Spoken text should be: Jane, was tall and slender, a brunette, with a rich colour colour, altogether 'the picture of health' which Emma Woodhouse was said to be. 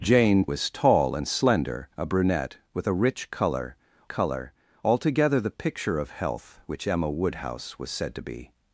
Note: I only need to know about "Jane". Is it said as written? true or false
true